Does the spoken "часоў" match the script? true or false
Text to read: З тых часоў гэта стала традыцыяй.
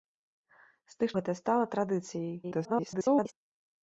false